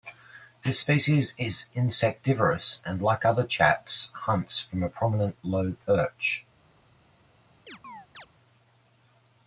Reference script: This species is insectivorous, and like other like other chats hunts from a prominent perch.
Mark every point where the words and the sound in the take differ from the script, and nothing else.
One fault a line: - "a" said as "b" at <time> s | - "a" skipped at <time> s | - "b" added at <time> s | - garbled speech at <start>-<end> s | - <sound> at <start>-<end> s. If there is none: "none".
- "like other" skipped at 3.4 s
- "low" added at 5.4 s
- chirp at 7.7-8.3 s